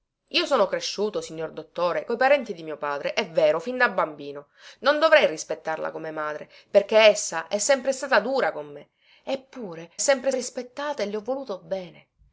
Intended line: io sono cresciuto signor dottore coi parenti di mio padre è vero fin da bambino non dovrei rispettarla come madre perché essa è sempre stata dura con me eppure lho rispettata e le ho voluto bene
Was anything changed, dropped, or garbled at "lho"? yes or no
yes